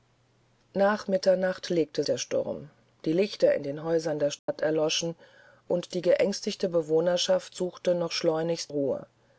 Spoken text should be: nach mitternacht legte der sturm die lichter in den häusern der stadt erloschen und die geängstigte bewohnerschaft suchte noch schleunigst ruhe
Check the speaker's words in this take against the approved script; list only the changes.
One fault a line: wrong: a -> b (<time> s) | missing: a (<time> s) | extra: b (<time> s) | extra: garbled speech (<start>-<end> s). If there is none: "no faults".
no faults